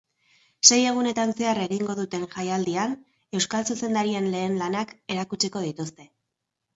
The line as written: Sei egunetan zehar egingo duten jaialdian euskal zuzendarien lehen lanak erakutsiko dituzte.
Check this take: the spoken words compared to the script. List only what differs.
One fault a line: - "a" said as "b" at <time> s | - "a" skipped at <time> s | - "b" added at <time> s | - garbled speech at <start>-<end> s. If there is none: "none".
none